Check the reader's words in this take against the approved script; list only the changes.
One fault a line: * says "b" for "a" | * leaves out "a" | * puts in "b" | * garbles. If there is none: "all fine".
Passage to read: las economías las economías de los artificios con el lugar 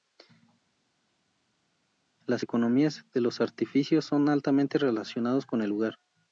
* leaves out "las economías"
* puts in "son altamente relacionados"